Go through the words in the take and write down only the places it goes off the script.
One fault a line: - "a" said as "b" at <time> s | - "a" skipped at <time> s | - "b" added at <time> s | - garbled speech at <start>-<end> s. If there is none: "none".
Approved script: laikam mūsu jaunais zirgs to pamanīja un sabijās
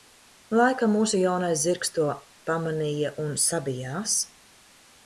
none